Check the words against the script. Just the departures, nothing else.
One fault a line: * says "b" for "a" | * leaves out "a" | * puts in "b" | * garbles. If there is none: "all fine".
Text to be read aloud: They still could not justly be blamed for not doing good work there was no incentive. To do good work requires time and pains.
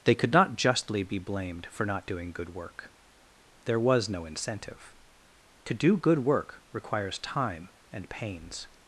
* leaves out "still"